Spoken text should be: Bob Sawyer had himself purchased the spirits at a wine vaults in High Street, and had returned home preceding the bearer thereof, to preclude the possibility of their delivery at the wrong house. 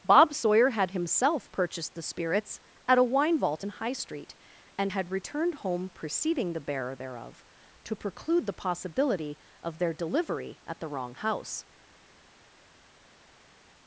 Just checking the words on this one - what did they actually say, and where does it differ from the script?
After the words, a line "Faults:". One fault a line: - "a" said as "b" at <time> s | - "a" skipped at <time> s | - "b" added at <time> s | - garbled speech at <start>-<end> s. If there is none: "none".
Bob Sawyer had himself purchased the spirits at a wine vault in High Street, and had returned home preceding the bearer thereof, to preclude the possibility of their delivery at the wrong house.
Faults:
- "vaults" said as "vault" at 3.4 s